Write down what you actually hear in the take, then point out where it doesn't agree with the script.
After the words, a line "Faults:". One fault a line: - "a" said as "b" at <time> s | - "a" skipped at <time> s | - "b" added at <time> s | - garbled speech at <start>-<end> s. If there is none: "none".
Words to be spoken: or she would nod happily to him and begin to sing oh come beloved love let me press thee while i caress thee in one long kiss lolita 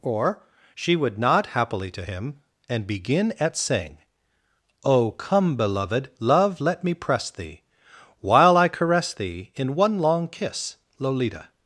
or she would nod happily to him and begin at sing oh come beloved love let me press thee while i caress thee in one long kiss lolita
Faults:
- "to" said as "at" at 3.4 s